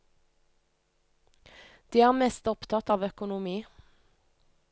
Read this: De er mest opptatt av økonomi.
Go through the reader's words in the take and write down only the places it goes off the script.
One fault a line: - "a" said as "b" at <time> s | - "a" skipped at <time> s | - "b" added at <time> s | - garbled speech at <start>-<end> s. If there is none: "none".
none